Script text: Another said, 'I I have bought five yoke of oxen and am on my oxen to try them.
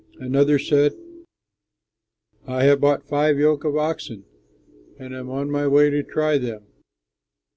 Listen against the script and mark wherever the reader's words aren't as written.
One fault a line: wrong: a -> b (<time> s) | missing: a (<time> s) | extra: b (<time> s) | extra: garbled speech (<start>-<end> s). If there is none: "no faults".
missing: I (2.6 s)
wrong: oxen -> way (5.7 s)